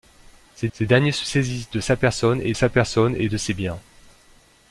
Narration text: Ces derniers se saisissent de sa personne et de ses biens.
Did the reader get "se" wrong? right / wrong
right